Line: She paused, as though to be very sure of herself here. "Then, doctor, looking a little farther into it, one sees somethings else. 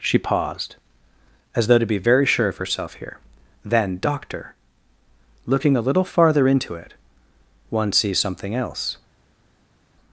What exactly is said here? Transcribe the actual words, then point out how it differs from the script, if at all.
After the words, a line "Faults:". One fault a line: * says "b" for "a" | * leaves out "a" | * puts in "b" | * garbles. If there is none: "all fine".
She paused, as though to be very sure of herself here. "Then, doctor, looking a little farther into it, one sees something else.
Faults:
* says "something" for "somethings"